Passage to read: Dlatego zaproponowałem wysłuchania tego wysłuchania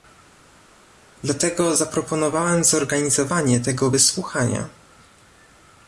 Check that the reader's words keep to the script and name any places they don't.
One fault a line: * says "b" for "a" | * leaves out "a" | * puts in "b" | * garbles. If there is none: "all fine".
* says "zorganizowanie" for "wysłuchania"